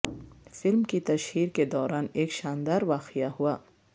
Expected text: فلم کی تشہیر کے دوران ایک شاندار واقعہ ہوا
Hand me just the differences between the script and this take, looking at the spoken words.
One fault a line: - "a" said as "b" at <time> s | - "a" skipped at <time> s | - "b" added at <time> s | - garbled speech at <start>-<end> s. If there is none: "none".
none